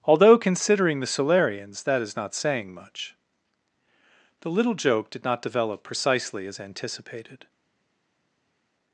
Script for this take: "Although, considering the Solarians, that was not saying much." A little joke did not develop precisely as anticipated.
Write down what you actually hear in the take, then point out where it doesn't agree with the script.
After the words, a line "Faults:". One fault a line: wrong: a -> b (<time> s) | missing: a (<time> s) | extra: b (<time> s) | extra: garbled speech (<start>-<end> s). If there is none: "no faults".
"Although, considering the Solarians, that is not saying much." The little joke did not develop precisely as anticipated.
Faults:
wrong: was -> is (2.0 s)
wrong: A -> The (4.4 s)